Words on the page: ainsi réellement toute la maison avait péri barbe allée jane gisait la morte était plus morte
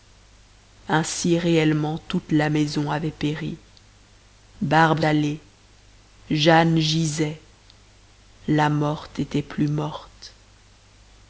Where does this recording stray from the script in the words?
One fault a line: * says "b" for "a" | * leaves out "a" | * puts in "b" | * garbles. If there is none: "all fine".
all fine